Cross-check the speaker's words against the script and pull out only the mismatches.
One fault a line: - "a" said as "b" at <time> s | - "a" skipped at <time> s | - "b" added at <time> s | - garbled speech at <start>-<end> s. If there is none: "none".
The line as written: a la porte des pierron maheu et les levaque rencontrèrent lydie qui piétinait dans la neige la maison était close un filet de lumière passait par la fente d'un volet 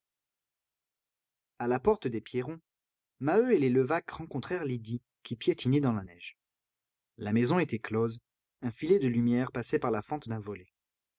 none